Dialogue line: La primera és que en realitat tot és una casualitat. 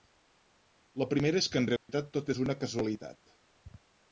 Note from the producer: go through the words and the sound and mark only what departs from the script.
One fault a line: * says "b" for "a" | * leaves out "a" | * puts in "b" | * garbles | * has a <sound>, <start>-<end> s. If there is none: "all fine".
* has a dropout, 1.8-1.9 s